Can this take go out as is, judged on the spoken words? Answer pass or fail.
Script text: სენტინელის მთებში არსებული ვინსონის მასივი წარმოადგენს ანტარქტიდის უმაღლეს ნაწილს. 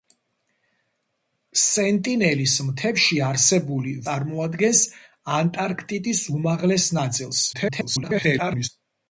fail